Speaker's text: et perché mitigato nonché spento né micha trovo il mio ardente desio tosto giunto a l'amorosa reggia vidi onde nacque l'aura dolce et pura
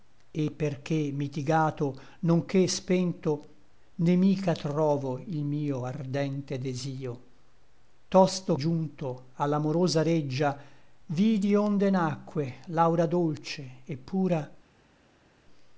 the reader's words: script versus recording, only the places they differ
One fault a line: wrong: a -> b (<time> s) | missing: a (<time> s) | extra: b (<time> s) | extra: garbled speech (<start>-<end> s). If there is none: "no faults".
no faults